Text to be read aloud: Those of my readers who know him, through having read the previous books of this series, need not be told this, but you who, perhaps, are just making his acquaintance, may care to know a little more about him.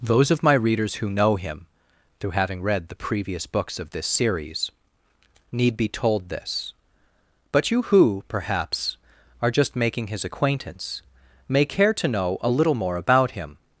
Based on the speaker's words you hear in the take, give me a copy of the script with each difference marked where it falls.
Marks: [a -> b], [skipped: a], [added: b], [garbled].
Those of my readers who know him, through having read the previous books of this series, need [skipped: not] be told this, but you who, perhaps, are just making his acquaintance, may care to know a little more about him.